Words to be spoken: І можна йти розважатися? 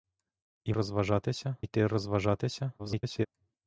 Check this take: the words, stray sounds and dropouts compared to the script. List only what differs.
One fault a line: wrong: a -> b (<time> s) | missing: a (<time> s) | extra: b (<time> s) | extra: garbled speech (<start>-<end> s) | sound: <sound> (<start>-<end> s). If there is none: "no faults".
wrong: можна -> розважатися (0.7 s)
extra: garbled speech (2.8-3.3 s)